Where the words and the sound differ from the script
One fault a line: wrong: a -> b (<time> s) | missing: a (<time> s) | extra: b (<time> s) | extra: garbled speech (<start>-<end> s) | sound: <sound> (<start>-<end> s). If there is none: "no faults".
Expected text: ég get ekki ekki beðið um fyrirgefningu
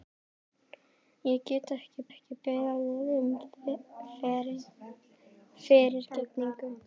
no faults